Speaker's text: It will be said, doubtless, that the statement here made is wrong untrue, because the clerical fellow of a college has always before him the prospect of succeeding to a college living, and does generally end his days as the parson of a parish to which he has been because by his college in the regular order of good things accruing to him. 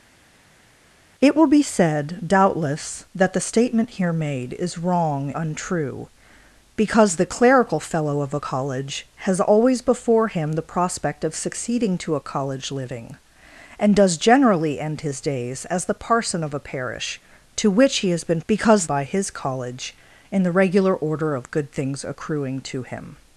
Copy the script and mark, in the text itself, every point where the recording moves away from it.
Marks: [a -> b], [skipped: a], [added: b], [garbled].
It will be said, doubtless, that the statement here made is wrong untrue, because the clerical fellow of a college has always before him the prospect of succeeding to a college living, and does generally end his days as the parson of a parish to which he has been because by his college in the regular order of good things accruing to him.